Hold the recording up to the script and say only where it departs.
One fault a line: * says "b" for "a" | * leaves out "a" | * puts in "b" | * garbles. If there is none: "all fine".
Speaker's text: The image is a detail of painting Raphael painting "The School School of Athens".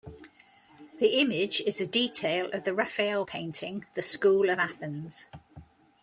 * says "the" for "painting"
* leaves out "School"